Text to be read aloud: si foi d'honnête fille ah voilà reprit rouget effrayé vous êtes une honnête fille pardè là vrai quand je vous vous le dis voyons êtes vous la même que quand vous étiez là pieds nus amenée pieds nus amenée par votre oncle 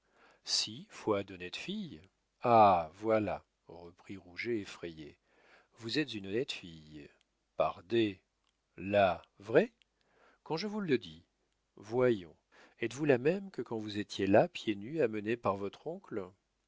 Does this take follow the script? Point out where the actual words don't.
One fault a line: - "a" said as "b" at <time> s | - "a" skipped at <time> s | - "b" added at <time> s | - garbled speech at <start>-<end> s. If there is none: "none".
- "vous" skipped at 10.8 s
- "pieds nus amenée" skipped at 15.4 s